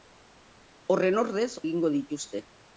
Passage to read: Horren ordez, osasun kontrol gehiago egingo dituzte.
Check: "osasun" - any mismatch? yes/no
yes